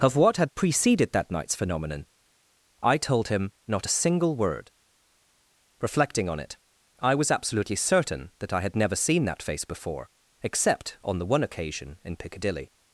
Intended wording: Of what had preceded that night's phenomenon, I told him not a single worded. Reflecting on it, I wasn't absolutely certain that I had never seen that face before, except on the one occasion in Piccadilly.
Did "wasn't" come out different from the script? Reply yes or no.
yes